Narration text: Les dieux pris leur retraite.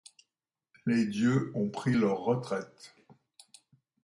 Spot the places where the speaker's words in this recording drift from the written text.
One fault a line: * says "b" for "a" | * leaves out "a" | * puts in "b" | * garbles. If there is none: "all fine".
* puts in "ont"